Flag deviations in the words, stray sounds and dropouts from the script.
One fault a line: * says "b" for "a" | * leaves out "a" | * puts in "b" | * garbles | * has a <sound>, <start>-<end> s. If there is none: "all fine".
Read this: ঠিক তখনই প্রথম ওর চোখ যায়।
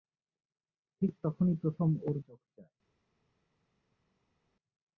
all fine